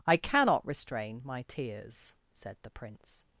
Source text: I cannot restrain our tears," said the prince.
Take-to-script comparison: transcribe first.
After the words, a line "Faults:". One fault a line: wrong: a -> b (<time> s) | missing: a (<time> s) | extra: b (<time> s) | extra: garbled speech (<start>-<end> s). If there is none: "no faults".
I cannot restrain my tears," said the prince.
Faults:
wrong: our -> my (1.2 s)